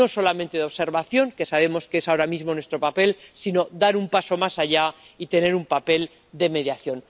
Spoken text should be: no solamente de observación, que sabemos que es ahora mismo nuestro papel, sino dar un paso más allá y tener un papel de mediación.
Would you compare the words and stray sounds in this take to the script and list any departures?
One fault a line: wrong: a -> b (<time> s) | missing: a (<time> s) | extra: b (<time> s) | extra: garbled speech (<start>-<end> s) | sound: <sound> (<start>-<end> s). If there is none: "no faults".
no faults